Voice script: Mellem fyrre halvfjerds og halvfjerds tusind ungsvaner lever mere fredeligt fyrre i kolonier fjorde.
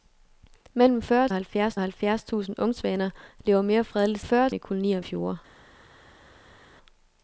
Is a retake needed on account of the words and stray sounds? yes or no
no